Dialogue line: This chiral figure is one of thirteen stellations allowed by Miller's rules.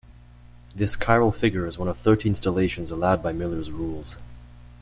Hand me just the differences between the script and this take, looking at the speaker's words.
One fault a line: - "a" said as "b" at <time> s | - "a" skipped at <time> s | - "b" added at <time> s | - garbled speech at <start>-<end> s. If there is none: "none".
none